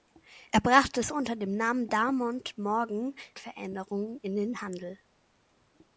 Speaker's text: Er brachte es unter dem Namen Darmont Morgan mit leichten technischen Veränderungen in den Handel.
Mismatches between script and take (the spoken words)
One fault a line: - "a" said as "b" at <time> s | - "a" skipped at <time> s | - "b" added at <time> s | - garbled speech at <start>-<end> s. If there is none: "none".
- "mit leichten technischen" skipped at 3.2 s